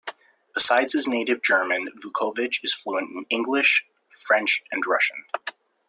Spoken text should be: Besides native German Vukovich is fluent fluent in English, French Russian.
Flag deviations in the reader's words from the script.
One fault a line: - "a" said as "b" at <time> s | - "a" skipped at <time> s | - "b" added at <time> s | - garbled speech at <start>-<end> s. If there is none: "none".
- "his" added at 0.9 s
- "fluent" skipped at 3.1 s
- "and" added at 4.7 s